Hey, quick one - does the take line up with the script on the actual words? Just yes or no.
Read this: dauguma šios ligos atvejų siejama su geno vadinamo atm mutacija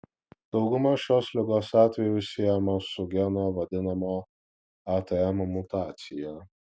yes